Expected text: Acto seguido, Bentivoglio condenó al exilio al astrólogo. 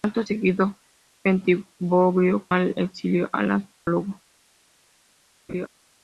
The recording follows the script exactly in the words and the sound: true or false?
false